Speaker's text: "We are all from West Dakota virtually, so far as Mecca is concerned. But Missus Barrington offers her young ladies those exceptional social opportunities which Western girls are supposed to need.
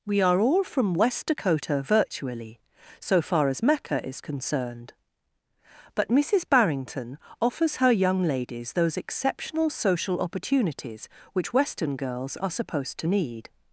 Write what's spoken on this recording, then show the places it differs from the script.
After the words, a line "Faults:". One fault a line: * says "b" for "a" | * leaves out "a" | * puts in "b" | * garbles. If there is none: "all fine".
"We are all from West Dakota virtually, so far as Mecca is concerned. But Missus Barrington offers her young ladies those exceptional social opportunities which Western girls are supposed to need.
Faults:
all fine